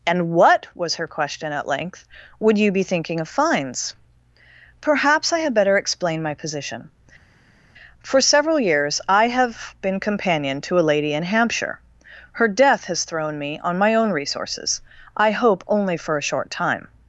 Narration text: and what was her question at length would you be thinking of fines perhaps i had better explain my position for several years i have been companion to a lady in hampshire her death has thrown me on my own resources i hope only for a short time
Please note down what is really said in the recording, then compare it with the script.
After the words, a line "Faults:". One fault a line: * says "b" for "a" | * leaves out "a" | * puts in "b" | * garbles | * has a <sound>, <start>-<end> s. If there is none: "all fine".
and what was her question at length would you be thinking of fines perhaps i had better explain my position for several years i have been companion to a lady in hampshire her death has thrown me on my own resources i hope only for a short time
Faults:
all fine